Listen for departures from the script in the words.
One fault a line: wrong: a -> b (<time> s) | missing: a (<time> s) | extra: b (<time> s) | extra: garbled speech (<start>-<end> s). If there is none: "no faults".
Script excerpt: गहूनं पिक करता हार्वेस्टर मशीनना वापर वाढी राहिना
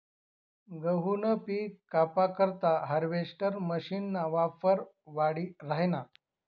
extra: कापा (1.9 s)